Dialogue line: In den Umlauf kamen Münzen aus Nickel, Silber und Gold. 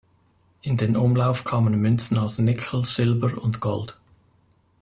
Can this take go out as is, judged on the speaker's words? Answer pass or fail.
pass